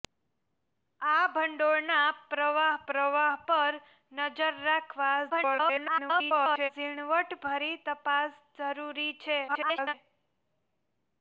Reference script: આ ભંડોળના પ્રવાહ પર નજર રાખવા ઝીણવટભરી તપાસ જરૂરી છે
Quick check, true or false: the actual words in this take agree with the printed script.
false